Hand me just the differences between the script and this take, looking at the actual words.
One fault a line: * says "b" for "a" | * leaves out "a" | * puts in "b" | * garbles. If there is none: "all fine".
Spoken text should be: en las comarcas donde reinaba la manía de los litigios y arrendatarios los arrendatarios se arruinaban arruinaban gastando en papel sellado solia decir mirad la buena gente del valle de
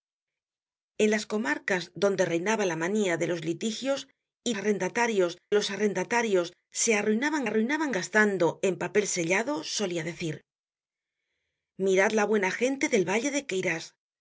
all fine